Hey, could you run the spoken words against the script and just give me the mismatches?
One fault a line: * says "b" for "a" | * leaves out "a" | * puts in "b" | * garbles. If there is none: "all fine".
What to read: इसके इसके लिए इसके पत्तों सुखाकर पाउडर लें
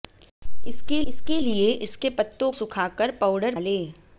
all fine